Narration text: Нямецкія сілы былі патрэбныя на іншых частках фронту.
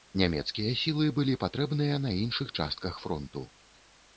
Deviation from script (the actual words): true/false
false